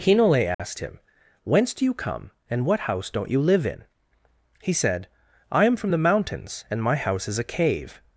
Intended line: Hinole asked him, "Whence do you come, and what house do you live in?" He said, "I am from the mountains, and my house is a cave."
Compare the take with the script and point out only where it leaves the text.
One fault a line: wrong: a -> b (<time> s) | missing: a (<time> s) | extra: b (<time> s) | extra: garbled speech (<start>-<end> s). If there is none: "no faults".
wrong: do -> don't (3.1 s)